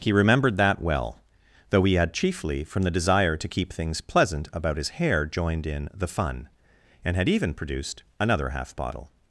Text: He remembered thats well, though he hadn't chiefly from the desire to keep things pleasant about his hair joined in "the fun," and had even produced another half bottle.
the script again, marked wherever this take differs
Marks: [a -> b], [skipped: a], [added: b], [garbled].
He remembered [thats -> that] well, though he [hadn't -> had] chiefly from the desire to keep things pleasant about his hair joined in "the fun," and had even produced another half bottle.